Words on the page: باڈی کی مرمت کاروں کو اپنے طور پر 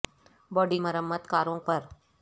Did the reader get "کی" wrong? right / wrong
wrong